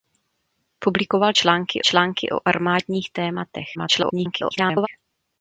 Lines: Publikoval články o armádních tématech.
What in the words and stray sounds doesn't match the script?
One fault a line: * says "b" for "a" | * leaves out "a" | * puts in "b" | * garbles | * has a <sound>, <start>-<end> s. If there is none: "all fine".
* puts in "články"
* garbles